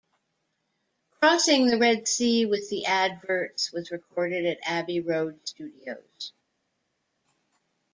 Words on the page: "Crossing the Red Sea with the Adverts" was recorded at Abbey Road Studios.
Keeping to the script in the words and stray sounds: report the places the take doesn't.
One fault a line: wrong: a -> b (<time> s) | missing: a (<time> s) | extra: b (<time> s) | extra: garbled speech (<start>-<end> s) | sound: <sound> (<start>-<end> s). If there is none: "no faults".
no faults